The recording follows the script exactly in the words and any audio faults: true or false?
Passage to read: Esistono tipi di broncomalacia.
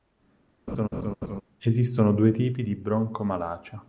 false